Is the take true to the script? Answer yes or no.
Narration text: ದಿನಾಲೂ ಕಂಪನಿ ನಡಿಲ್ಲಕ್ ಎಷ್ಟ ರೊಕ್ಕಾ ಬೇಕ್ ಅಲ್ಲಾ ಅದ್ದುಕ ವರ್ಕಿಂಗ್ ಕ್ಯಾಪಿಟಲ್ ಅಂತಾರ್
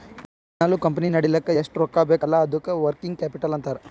yes